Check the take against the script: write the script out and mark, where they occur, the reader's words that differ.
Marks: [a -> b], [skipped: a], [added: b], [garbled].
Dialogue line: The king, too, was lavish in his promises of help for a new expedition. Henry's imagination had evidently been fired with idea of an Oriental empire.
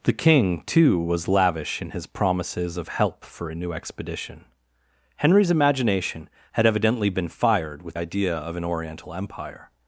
The king, too, was lavish in his promises of help for a new expedition. Henry's imagination had evidently been fired with idea of an Oriental empire.